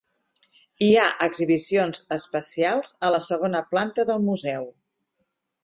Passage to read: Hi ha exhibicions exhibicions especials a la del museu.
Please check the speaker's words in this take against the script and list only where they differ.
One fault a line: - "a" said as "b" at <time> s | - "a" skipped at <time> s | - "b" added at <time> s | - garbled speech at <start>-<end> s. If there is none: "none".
- "exhibicions" skipped at 2.0 s
- "segona planta" added at 3.3 s